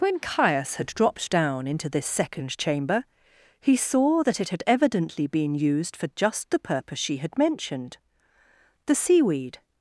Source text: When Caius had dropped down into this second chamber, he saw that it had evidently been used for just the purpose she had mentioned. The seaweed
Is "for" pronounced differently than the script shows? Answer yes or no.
no